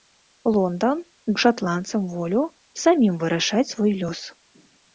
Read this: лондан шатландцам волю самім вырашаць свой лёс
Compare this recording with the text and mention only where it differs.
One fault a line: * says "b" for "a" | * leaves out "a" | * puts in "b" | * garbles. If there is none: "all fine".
all fine